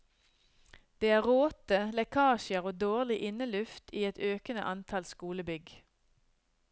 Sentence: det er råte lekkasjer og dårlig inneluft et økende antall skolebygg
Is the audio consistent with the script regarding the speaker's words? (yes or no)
no